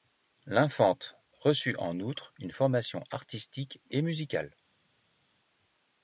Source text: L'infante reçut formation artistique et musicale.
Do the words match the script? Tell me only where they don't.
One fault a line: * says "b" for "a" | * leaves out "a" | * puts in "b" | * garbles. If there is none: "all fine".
* puts in "en outre une"